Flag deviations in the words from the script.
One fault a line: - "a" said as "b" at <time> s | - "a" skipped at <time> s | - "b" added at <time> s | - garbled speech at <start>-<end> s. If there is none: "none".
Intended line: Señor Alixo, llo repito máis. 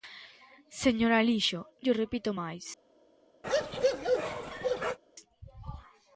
none